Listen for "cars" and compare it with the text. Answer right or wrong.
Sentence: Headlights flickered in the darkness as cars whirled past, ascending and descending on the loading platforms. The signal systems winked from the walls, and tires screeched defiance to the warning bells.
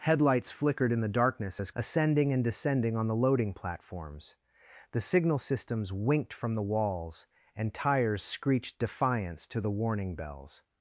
wrong